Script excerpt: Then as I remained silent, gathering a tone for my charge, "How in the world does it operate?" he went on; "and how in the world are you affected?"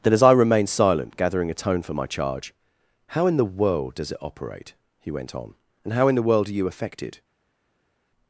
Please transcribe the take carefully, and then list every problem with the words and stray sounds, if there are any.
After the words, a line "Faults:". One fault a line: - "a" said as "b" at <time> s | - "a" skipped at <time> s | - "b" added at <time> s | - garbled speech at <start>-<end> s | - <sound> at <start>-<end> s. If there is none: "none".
Then as I remained silent, gathering a tone for my charge, "How in the world does it operate?" he went on; "and how in the world are you affected?"
Faults:
none